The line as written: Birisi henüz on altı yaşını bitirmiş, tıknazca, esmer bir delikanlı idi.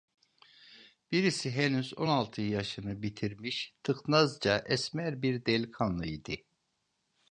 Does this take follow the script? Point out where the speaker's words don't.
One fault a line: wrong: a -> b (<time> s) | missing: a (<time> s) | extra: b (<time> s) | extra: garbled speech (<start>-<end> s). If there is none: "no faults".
no faults